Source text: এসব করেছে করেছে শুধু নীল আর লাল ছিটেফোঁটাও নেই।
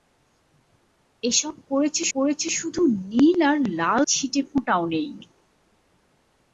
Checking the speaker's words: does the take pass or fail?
pass